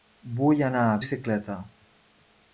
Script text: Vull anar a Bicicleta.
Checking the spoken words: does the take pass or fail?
pass